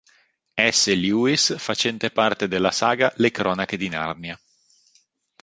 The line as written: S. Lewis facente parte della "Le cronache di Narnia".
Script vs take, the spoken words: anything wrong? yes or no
yes